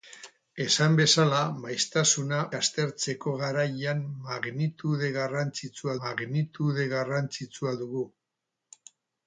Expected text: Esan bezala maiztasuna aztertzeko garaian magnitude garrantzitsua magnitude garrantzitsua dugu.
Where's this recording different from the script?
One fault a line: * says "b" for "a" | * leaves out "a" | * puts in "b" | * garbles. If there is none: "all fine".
all fine